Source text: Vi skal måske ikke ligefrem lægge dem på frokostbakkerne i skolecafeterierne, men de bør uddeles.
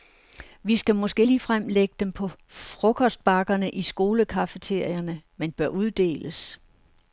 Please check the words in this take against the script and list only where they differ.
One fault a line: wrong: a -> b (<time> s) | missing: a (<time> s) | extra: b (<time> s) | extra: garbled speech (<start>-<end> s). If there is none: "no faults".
missing: ikke (1.2 s)
missing: de (5.5 s)